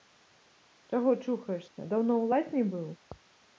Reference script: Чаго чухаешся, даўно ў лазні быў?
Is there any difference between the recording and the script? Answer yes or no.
no